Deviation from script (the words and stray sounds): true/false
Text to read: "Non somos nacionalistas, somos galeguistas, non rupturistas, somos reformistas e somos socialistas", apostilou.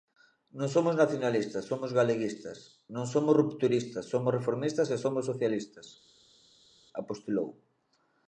true